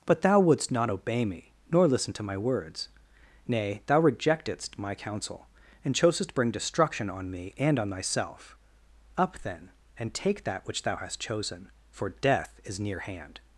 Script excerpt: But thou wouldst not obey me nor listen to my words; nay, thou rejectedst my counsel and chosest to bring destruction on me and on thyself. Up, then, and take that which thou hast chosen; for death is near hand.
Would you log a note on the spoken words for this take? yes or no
yes